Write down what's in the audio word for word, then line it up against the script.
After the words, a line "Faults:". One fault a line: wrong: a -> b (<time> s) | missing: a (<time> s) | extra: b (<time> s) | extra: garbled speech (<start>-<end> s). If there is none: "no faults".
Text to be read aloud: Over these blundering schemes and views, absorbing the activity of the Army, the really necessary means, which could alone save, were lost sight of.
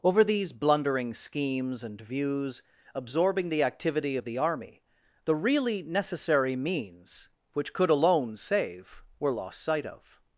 Over these blundering schemes and views, absorbing the activity of the Army, the really necessary means, which could alone save, were lost sight of.
Faults:
no faults